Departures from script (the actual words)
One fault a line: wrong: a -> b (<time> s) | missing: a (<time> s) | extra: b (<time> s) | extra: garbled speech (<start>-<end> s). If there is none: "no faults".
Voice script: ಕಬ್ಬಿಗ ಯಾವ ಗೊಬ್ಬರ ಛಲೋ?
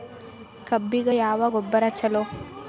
no faults